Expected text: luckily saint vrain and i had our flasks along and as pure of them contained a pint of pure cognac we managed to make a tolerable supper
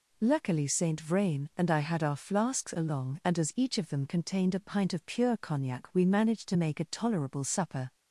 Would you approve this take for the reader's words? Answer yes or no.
no